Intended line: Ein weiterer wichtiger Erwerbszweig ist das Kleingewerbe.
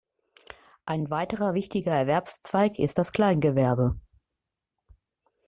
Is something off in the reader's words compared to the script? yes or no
no